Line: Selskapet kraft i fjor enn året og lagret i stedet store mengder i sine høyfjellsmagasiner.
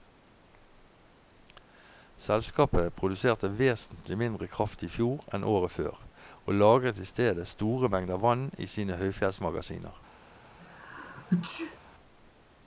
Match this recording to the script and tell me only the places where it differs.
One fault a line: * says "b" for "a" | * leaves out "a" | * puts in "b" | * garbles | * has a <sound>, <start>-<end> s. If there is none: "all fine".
* puts in "produserte vesentlig mindre"
* puts in "før"
* puts in "vann"
* has a sneeze, 10.6-11.8 s